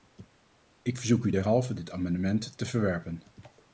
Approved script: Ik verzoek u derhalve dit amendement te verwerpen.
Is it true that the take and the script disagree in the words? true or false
false